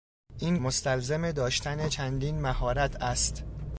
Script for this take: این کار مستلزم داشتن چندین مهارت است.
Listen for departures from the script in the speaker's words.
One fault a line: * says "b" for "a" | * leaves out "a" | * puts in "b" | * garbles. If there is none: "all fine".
* leaves out "کار"